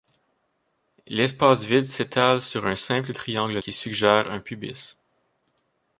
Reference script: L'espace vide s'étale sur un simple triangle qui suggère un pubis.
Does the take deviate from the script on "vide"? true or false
false